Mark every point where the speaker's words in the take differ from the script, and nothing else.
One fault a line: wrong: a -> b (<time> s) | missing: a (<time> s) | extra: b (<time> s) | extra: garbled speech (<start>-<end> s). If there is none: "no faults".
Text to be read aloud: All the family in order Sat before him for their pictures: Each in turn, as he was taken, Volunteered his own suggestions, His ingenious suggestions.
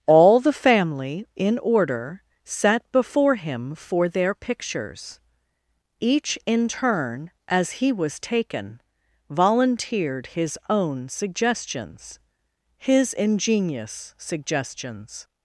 no faults